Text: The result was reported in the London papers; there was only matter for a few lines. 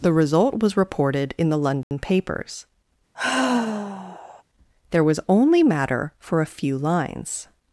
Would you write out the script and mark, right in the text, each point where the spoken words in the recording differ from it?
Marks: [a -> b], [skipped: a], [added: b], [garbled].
The result was reported in the London papers; there was only matter for a few lines.